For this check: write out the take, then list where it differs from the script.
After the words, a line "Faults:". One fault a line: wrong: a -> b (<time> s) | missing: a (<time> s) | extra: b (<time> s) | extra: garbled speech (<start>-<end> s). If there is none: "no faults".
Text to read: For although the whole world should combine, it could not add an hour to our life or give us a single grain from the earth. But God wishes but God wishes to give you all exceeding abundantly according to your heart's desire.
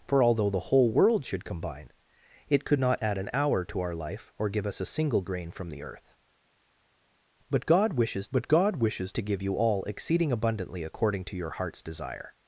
For although the whole world should combine, it could not add an hour to our life or give us a single grain from the earth. But God wishes but God wishes to give you all exceeding abundantly according to your heart's desire.
Faults:
no faults